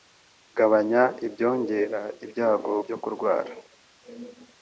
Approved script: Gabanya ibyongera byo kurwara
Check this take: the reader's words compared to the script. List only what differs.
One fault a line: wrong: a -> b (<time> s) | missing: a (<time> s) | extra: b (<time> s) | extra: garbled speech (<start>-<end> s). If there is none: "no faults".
extra: ibyago (2.2 s)